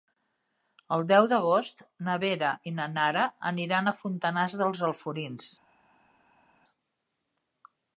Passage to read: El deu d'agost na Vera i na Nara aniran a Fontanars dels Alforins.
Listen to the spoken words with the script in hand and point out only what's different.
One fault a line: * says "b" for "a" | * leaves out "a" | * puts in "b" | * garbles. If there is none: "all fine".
all fine